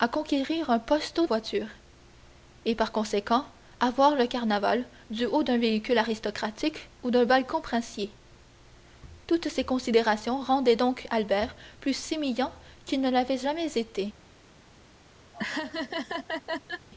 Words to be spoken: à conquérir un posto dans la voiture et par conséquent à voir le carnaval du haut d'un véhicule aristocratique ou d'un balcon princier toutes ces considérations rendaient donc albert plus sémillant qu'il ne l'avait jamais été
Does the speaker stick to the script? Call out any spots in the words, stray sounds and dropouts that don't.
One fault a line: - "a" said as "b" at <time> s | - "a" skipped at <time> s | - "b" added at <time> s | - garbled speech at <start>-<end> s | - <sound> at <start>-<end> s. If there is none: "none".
- "dans la" skipped at 1.3 s
- laugh at 15.3-16.9 s